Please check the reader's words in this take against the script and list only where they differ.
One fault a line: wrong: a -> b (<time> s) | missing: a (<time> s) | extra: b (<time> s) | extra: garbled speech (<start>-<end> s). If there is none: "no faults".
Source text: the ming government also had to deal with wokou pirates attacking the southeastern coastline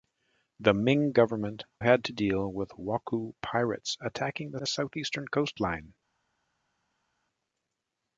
missing: also (1.6 s)
extra: the (4.6 s)